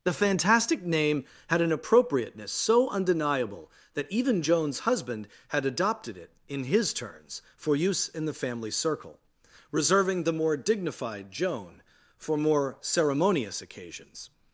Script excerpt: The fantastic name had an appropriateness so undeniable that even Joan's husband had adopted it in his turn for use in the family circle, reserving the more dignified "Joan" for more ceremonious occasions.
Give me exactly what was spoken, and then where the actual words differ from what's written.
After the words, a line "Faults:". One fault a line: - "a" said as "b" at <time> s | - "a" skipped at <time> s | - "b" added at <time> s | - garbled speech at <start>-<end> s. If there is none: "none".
The fantastic name had an appropriateness so undeniable that even Joan's husband had adopted it in his turns for use in the family circle, reserving the more dignified "Joan" for more ceremonious occasions.
Faults:
- "turn" said as "turns" at 6.9 s